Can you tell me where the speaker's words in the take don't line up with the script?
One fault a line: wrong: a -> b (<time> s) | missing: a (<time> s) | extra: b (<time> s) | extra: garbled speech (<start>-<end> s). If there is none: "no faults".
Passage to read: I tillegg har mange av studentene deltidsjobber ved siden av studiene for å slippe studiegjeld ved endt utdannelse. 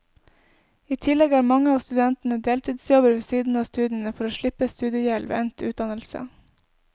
no faults